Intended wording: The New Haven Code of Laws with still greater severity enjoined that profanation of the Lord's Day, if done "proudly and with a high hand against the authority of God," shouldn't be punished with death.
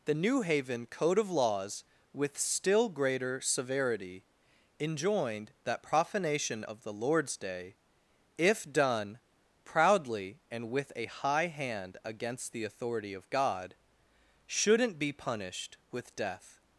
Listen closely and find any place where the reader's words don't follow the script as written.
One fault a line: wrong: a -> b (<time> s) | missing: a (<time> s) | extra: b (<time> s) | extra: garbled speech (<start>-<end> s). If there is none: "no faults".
no faults